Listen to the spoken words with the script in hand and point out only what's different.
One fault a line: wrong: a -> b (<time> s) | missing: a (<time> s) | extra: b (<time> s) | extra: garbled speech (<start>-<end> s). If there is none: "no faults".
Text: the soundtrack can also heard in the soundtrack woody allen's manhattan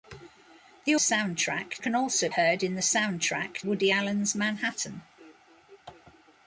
no faults